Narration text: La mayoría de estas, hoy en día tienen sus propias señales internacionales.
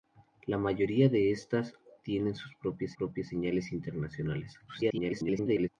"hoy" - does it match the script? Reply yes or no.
no